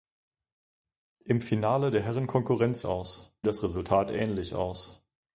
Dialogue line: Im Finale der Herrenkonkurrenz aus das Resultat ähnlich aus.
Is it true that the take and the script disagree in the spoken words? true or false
false